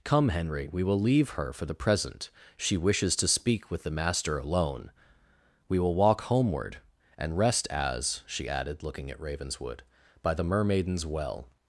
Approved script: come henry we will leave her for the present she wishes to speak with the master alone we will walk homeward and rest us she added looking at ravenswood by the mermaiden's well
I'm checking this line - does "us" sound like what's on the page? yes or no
no